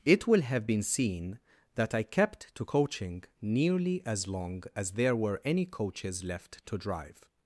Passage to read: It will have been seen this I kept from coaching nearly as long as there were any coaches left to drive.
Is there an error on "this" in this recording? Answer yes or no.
yes